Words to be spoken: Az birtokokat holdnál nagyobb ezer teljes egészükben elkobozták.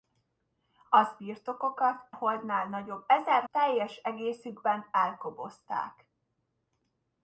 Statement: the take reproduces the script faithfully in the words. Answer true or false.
true